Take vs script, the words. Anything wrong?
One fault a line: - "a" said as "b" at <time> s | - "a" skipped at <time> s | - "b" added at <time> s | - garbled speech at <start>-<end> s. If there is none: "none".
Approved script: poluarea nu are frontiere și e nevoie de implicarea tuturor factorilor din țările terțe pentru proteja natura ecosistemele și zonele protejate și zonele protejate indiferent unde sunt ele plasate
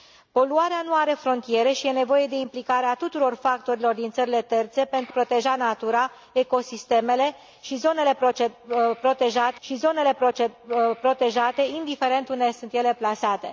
none